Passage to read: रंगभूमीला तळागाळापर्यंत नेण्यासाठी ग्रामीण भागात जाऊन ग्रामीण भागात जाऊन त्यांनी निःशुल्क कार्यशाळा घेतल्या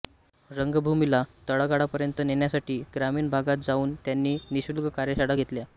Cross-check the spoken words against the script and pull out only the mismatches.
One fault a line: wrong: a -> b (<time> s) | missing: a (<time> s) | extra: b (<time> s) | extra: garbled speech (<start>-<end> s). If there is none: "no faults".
missing: ग्रामीण भागात जाऊन (3.9 s)